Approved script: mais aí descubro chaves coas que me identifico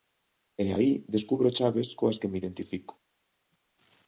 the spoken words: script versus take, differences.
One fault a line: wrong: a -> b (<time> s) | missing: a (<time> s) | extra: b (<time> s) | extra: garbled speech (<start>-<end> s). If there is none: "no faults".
wrong: mais -> e (0.6 s)